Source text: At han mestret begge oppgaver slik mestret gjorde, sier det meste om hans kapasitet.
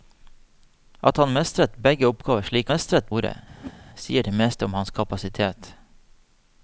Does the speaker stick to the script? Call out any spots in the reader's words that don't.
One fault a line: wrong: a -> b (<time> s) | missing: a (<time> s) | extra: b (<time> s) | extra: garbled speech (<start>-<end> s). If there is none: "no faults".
no faults